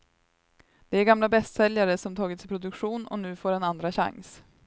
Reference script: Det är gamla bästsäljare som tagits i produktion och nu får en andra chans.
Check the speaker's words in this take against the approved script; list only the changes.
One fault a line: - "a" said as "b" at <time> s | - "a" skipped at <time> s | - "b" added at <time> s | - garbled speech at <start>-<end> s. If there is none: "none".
none